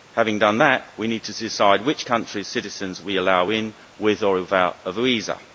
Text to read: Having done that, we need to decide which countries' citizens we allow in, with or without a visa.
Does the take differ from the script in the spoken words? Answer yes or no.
no